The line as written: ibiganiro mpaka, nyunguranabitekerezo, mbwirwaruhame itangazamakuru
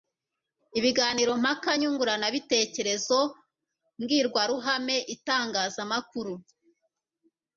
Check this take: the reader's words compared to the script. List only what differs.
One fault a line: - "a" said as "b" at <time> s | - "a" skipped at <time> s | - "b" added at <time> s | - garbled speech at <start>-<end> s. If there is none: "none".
none